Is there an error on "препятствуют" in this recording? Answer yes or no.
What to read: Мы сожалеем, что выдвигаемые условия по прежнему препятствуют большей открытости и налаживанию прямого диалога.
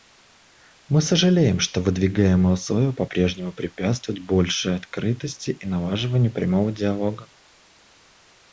no